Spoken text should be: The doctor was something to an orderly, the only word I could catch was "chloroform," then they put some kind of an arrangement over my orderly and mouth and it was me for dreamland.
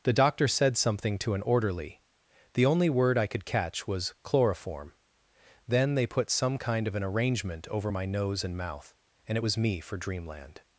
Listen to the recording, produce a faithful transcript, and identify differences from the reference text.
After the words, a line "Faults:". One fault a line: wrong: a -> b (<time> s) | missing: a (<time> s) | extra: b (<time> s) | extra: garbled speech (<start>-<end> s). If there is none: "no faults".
The doctor said something to an orderly, the only word I could catch was "chloroform," then they put some kind of an arrangement over my nose and mouth and it was me for dreamland.
Faults:
wrong: was -> said (0.5 s)
wrong: orderly -> nose (8.1 s)